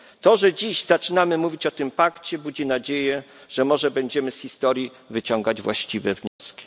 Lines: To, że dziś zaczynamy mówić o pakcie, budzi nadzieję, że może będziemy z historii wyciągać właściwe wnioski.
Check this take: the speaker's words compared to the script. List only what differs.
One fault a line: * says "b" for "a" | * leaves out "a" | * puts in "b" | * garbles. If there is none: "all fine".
* puts in "tym"